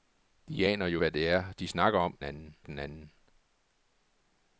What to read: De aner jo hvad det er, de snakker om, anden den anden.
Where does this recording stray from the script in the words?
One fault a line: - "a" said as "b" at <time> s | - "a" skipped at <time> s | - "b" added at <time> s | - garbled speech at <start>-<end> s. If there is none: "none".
none